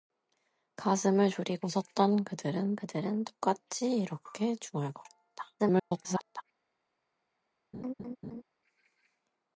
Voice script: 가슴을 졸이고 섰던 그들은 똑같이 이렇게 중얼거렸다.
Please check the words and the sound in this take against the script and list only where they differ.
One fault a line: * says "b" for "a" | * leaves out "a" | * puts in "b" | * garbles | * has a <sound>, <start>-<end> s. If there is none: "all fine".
* puts in "그들은"
* garbles
* has a laugh, 7.7-8.4 s